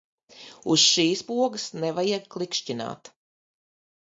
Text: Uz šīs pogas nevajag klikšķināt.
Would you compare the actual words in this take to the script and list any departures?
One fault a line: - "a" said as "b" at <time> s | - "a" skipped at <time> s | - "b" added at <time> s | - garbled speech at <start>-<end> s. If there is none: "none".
none